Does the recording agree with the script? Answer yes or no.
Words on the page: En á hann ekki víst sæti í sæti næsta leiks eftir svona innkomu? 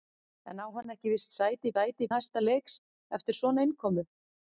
yes